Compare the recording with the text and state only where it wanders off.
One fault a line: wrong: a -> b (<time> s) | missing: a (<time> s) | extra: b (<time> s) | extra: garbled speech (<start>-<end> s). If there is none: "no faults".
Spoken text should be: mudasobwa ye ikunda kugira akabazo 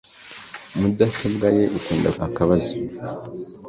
missing: kugira (2.1 s)